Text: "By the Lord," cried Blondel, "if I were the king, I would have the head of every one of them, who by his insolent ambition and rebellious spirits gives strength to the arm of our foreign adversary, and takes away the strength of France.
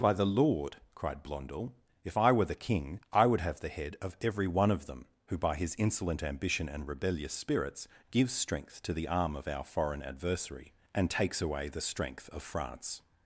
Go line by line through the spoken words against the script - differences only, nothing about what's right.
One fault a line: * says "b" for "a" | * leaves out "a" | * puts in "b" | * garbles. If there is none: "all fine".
all fine